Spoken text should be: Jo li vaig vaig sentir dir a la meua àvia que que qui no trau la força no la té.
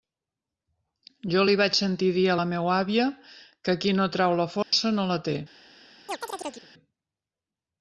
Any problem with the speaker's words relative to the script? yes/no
yes